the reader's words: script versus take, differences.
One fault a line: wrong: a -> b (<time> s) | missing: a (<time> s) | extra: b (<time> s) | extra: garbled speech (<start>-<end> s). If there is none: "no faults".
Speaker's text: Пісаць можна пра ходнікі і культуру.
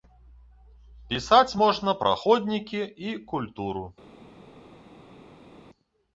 no faults